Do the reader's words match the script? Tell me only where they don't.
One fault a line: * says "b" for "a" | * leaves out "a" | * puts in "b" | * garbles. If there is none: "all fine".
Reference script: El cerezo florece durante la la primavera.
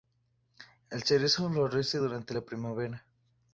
* leaves out "la"